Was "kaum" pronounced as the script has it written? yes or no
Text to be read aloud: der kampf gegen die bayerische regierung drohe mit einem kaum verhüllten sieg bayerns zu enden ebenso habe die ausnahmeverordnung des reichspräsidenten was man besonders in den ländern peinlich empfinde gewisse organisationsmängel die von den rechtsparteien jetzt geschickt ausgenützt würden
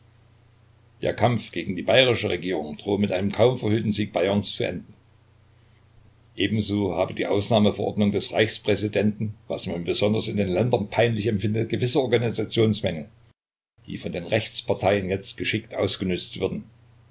yes